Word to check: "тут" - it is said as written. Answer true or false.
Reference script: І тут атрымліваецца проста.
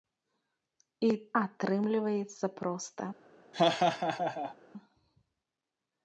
false